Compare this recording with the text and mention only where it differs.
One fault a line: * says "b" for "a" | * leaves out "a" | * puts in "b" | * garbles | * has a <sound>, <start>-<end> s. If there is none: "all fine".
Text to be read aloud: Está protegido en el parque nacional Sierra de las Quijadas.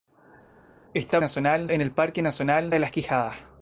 * says "nacional" for "protegido"
* leaves out "Sierra"